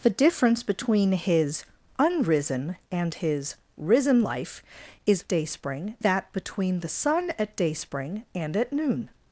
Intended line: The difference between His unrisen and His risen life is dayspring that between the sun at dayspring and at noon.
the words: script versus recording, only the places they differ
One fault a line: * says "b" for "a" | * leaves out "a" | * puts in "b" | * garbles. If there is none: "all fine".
all fine